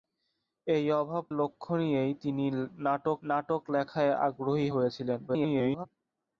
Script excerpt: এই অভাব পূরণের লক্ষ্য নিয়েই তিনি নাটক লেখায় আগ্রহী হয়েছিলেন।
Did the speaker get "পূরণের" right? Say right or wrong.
wrong